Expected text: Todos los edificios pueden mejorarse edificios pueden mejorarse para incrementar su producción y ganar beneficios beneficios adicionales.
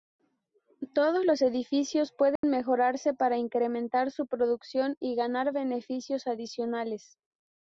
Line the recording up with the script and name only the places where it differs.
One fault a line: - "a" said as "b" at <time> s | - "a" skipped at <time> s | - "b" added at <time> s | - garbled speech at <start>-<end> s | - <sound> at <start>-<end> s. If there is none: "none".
- dropout at 2.4-2.4 s
- "edificios pueden mejorarse" skipped at 3.1 s
- "beneficios" skipped at 6.3 s